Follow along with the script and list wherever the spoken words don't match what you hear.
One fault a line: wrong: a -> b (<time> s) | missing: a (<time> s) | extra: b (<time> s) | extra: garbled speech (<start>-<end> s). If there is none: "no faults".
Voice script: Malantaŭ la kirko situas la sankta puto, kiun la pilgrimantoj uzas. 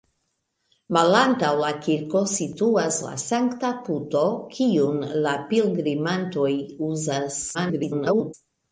extra: garbled speech (7.5-8.3 s)